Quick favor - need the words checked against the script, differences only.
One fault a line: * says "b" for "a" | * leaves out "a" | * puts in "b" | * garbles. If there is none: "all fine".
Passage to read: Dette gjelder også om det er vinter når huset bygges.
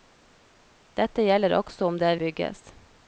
* leaves out "vinter når huset"